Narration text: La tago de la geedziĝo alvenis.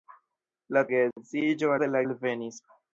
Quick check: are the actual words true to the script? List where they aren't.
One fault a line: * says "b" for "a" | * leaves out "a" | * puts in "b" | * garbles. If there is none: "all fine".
* says "geedziĝo" for "tago"
* leaves out "geedziĝo"